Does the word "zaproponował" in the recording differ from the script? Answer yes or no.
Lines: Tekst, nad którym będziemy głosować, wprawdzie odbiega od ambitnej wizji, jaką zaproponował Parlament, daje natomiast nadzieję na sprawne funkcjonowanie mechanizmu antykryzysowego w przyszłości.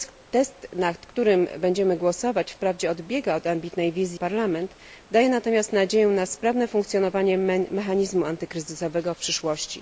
yes